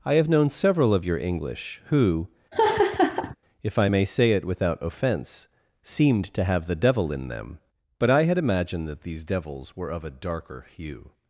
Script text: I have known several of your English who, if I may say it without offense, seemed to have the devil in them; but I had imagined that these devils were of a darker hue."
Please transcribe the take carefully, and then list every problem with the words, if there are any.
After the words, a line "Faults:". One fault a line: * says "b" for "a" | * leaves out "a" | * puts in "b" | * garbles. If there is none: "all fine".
I have known several of your English who, if I may say it without offense, seemed to have the devil in them; but I had imagined that these devils were of a darker hue."
Faults:
all fine